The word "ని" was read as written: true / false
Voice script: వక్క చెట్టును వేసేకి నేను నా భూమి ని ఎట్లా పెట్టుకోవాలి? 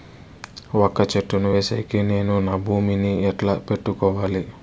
true